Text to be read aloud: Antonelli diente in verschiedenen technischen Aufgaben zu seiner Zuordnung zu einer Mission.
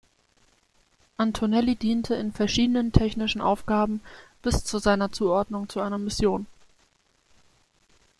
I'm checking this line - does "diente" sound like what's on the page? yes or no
yes